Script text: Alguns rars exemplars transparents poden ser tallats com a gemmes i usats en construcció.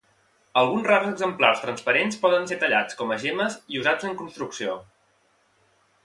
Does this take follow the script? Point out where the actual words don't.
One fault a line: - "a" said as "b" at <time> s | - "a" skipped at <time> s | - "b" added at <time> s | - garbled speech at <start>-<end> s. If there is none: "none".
none